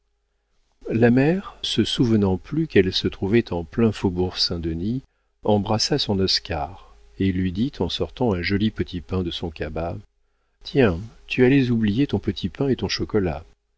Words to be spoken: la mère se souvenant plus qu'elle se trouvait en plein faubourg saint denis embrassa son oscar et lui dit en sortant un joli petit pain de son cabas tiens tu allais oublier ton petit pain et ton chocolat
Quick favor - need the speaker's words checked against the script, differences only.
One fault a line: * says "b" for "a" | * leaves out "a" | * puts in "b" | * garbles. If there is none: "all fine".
all fine